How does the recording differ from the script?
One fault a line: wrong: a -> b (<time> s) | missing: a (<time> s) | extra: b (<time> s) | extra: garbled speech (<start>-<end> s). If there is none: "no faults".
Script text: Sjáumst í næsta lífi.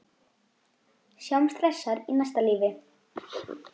extra: hressar (1.6 s)